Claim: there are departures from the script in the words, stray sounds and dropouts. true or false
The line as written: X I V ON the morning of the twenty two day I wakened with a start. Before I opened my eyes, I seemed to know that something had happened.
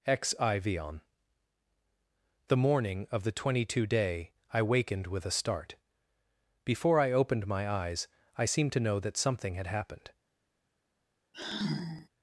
true